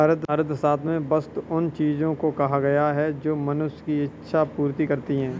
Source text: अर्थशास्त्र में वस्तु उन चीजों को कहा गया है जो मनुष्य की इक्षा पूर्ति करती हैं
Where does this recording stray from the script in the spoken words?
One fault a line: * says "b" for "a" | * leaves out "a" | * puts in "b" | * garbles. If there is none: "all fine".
all fine